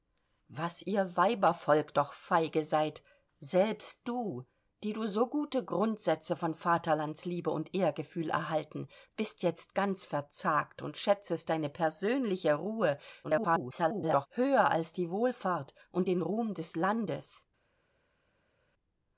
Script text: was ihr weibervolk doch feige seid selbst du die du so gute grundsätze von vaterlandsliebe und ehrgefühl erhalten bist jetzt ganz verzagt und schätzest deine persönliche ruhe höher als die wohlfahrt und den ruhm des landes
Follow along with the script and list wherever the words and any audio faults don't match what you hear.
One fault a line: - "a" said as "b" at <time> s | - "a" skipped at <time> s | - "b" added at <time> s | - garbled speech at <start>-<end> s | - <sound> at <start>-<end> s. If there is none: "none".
- garbled speech at 13.2-14.3 s